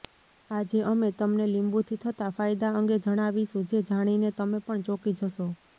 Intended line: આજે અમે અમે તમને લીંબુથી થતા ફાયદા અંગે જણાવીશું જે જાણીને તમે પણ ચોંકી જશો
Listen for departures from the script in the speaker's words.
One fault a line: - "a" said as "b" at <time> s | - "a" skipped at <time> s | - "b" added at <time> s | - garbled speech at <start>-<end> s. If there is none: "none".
- "અમે" skipped at 1.1 s